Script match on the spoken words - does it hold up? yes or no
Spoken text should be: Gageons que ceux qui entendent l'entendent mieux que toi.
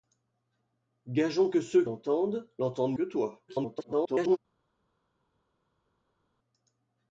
no